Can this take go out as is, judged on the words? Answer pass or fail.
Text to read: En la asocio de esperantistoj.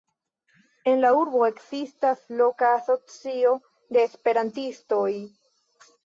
fail